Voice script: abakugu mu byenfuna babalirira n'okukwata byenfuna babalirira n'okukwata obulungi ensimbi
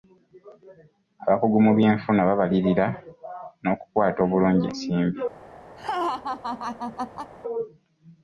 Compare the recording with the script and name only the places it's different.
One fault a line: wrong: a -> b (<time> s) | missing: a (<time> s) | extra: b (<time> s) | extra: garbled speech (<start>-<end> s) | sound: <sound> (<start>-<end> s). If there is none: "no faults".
missing: byenfuna babalirira n'okukwata (4.2 s)
sound: laugh (5.8-7.3 s)